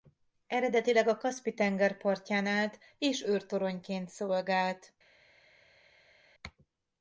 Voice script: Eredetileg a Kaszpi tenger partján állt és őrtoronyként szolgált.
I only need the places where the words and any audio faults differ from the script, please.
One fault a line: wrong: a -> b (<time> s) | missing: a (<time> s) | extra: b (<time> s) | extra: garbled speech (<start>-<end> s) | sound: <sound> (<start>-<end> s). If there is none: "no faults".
no faults